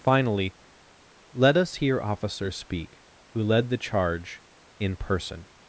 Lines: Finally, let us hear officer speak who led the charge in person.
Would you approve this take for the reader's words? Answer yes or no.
yes